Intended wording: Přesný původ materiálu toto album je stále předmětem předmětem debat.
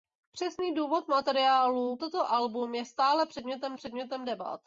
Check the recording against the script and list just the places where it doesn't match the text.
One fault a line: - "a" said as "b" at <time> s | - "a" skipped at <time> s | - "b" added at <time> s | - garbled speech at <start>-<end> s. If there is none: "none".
none